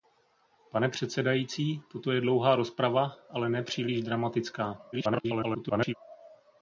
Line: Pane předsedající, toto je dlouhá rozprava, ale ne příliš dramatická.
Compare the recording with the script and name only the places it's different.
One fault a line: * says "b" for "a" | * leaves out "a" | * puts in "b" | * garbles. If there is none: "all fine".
* garbles